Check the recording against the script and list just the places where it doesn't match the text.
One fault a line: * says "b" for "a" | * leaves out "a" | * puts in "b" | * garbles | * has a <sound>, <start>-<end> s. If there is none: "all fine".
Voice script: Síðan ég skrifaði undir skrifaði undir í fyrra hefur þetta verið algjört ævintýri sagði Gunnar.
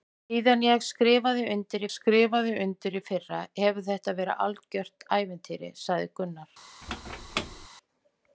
* has a squeak, 6.8-7.7 s